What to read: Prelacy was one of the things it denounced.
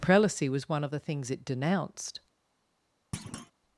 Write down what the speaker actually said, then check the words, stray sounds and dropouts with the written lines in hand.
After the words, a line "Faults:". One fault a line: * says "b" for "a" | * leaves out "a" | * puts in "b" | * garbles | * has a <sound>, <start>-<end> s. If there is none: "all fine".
Prelacy was one of the things it denounced.
Faults:
* has a thud, 3.1-3.5 s